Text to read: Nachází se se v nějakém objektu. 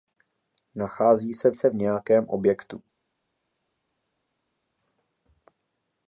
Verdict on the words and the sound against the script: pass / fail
pass